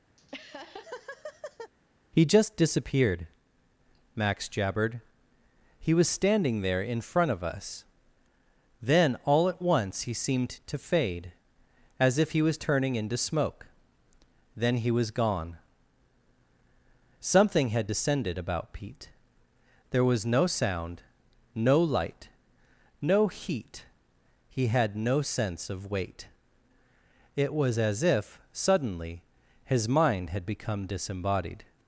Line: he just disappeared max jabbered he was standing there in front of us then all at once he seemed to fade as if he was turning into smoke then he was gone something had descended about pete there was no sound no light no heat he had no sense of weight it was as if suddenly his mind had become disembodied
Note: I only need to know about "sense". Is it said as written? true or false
true